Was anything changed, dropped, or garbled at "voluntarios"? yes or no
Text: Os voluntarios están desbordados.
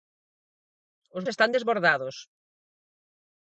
yes